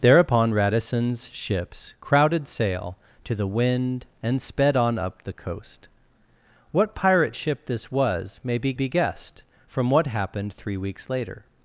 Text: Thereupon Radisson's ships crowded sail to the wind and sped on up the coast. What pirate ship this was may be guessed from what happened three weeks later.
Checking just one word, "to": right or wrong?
right